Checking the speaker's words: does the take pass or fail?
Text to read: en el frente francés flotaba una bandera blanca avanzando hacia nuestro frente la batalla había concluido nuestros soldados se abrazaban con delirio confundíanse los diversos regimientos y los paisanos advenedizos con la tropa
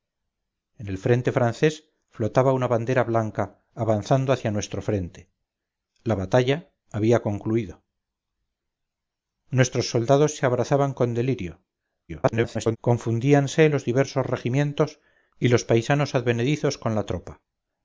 fail